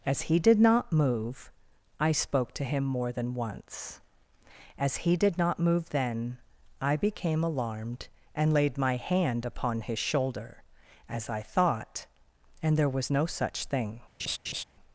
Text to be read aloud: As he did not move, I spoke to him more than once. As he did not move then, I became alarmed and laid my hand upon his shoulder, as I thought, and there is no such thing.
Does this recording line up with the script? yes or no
no